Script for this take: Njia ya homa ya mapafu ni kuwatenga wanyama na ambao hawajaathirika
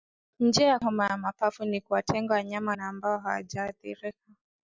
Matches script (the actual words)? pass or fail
pass